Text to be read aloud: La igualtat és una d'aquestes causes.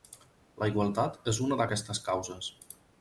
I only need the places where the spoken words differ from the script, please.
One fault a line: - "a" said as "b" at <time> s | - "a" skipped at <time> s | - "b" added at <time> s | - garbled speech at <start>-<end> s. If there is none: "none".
none